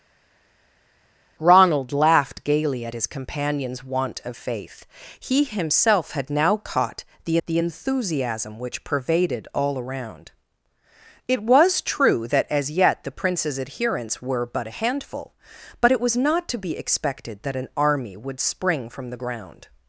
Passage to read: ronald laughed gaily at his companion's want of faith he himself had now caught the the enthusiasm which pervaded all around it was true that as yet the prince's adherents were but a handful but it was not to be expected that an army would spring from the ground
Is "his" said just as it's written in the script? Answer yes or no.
yes